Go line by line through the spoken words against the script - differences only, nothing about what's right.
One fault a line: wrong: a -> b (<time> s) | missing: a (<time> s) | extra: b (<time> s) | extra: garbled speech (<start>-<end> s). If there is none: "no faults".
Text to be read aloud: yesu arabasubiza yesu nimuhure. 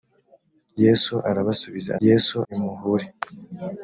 no faults